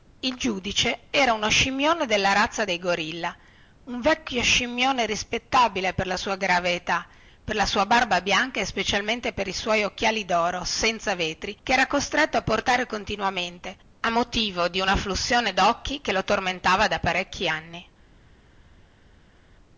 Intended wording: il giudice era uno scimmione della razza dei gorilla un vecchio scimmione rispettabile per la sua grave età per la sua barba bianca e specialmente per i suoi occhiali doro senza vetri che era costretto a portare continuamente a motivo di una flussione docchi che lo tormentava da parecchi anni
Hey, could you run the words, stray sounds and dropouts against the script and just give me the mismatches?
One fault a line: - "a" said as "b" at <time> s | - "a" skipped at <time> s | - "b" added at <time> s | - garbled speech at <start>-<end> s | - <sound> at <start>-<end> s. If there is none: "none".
none